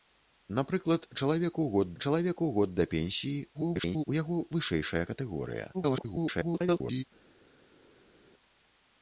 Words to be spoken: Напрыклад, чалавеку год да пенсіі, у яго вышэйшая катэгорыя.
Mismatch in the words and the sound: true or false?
true